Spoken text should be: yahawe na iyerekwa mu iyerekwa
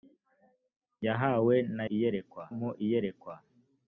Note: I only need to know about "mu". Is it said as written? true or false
true